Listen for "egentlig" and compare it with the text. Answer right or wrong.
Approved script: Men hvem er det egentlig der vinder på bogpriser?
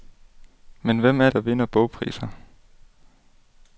wrong